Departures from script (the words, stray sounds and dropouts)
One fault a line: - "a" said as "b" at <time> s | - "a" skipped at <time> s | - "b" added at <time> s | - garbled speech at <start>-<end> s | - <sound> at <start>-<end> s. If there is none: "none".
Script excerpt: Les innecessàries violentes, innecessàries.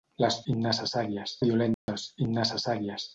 - dropout at 1.7-1.9 s